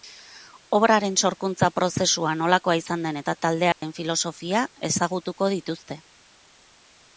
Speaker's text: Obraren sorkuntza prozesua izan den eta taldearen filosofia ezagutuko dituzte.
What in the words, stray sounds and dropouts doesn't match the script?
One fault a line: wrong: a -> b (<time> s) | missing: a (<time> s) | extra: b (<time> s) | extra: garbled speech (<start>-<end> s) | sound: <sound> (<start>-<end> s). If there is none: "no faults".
extra: nolakoa (2.4 s)
sound: dropout (3.7-3.8 s)